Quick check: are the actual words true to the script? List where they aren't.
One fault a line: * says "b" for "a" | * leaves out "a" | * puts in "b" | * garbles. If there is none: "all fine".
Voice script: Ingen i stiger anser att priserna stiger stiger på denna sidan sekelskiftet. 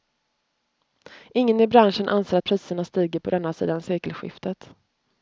* says "branschen" for "stiger"
* leaves out "stiger"